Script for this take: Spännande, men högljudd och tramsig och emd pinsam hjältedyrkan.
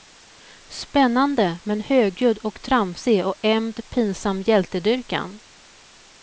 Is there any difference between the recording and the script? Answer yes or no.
no